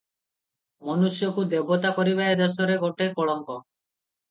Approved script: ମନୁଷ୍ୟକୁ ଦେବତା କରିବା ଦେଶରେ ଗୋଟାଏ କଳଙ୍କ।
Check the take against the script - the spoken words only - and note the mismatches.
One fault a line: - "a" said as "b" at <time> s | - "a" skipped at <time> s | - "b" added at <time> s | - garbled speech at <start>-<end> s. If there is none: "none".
- "ଏ" added at 2.3 s